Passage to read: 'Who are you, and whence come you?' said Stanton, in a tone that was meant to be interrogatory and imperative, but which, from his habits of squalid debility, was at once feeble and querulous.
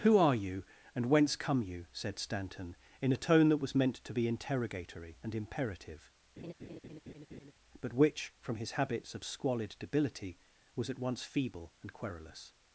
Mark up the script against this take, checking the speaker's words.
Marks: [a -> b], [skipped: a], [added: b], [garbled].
'Who are you, and whence come you?' said Stanton, in a tone that was meant to be interrogatory and imperative, but which, from his habits of squalid debility, was at once feeble and querulous.